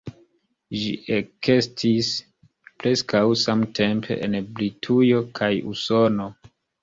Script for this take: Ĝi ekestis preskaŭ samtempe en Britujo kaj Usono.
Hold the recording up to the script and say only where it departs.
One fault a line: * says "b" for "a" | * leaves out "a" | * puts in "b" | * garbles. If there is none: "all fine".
all fine